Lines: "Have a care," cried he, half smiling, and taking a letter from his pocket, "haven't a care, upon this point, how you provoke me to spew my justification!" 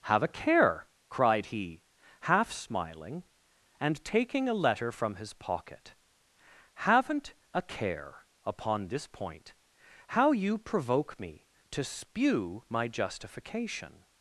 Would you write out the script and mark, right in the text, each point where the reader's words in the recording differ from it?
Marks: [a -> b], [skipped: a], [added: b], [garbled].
"Have a care," cried he, half smiling, and taking a letter from his pocket, "haven't a care, upon this point, how you provoke me to spew my justification!"